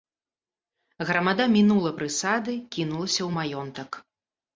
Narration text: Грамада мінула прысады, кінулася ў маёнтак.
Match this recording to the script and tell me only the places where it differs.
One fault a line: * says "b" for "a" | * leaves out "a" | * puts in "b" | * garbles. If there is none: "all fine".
all fine